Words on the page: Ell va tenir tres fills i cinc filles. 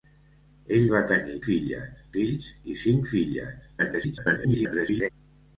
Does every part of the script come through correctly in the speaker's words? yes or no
no